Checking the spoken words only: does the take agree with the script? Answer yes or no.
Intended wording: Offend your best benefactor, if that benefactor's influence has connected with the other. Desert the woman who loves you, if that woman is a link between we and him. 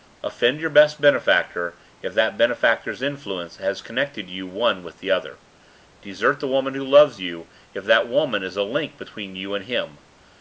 no